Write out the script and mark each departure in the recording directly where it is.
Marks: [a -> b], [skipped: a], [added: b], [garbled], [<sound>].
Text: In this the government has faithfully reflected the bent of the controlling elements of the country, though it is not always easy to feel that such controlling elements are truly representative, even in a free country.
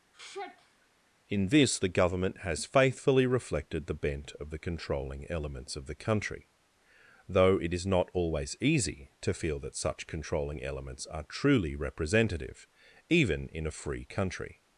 [sigh] In this the government has faithfully reflected the bent of the controlling elements of the country, though it is not always easy to feel that such controlling elements are truly representative, even in a free country.